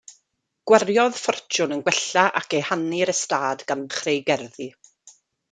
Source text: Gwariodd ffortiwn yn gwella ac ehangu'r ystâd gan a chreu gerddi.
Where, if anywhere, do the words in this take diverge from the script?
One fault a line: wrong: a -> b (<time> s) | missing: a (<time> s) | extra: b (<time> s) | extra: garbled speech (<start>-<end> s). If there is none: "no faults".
no faults